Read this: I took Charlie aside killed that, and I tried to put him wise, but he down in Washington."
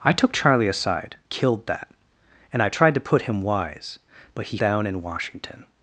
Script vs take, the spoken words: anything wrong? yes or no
no